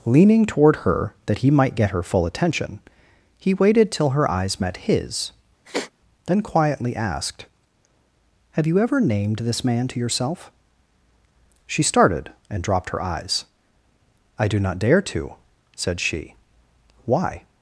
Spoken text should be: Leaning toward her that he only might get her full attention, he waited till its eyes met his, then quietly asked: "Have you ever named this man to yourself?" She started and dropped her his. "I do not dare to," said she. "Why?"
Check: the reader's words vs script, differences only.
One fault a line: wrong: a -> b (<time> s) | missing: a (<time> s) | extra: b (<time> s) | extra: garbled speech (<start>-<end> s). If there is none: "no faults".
missing: only (1.5 s)
wrong: its -> her (4.1 s)
wrong: his -> eyes (13.0 s)